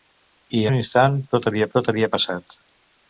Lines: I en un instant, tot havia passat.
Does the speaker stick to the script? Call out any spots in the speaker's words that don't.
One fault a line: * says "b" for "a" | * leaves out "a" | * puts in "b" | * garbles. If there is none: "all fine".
* leaves out "en"
* puts in "tot havia"